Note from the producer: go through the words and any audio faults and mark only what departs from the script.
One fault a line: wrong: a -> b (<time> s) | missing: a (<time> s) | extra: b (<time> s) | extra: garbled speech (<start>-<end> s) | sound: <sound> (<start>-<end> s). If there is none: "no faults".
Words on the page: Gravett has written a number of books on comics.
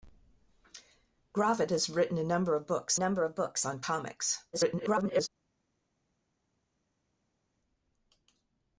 extra: number of books (2.9 s)
extra: garbled speech (4.5-5.3 s)